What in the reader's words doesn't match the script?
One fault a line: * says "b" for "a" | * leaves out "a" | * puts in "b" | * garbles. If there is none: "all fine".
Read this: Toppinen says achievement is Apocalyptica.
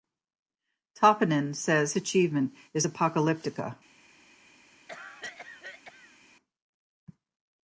all fine